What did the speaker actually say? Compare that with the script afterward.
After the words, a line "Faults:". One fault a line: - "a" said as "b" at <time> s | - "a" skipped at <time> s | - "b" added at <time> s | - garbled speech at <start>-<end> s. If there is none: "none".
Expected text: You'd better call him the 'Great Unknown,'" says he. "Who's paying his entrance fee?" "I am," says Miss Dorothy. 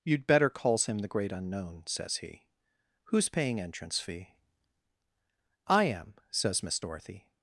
You'd better calls him the 'Great Unknown,'" says he. "Who's paying entrance fee?" "I am," says Miss Dorothy.
Faults:
- "call" said as "calls" at 0.5 s
- "his" skipped at 3.6 s